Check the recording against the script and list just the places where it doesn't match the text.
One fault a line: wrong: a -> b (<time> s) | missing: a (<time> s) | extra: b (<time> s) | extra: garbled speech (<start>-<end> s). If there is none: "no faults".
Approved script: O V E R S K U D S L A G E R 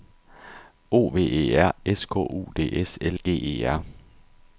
missing: A (3.2 s)